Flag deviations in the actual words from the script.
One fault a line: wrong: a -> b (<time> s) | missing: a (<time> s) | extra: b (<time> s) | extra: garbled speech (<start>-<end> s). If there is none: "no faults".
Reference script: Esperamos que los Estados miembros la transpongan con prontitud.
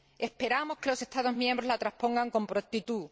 no faults